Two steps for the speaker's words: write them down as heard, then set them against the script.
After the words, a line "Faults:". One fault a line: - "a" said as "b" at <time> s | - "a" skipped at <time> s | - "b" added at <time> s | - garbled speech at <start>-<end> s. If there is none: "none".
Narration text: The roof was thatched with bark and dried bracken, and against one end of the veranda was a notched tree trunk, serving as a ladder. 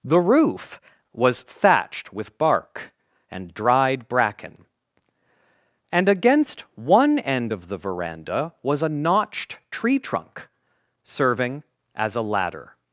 The roof was thatched with bark and dried bracken, and against one end of the veranda was a notched tree trunk, serving as a ladder.
Faults:
none